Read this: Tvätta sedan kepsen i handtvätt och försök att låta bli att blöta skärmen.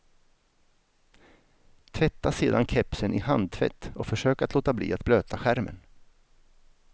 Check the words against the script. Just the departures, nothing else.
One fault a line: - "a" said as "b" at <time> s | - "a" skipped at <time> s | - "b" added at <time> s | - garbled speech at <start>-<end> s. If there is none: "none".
none